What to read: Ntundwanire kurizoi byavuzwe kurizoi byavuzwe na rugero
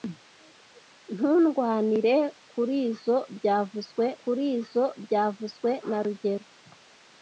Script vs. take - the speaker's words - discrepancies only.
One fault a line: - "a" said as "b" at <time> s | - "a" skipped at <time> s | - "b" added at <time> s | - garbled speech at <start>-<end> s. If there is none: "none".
none